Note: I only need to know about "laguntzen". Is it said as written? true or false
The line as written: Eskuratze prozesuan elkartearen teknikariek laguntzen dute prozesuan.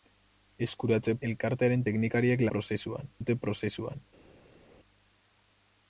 false